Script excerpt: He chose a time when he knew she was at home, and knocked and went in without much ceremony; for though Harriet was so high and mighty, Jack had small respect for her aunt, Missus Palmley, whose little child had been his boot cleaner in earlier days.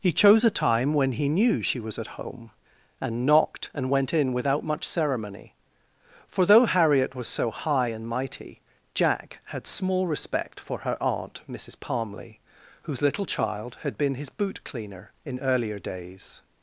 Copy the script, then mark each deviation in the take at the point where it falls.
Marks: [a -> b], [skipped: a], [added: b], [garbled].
He chose a time when he knew she was at home, and knocked and went in without much ceremony; for though Harriet was so high and mighty, Jack had small respect for her aunt, Missus Palmley, whose little child had been his boot cleaner in earlier days.